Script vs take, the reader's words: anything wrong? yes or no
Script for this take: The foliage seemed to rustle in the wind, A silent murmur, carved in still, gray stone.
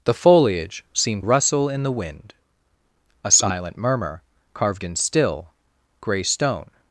yes